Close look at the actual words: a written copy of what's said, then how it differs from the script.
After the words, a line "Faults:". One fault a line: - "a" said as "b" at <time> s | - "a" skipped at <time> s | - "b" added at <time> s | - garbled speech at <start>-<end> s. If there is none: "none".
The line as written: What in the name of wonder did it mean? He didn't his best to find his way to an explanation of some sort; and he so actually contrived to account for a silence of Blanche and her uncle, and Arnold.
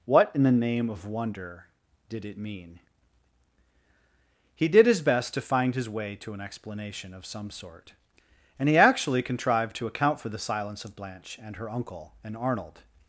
What in the name of wonder did it mean? He did his best to find his way to an explanation of some sort; and he actually contrived to account for the silence of Blanche and her uncle, and Arnold.
Faults:
- "didn't" said as "did" at 4.7 s
- "so" skipped at 8.8 s
- "a" said as "the" at 10.3 s